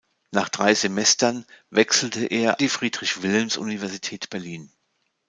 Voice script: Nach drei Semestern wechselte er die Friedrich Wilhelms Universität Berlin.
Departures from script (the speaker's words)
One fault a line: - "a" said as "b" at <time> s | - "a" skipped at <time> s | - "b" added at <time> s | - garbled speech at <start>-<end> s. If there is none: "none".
none